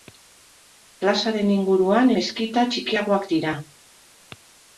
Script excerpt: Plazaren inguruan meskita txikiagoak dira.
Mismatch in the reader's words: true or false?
false